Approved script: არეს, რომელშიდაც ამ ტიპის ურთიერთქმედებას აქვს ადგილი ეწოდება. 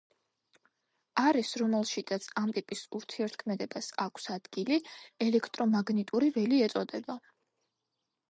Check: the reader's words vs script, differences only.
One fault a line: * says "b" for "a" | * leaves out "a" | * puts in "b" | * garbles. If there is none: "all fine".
* puts in "ელექტრომაგნიტური ველი"